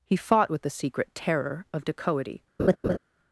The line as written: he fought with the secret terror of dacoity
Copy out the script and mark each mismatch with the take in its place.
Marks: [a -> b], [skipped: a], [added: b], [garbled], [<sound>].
he fought with the secret terror of dacoity [laugh]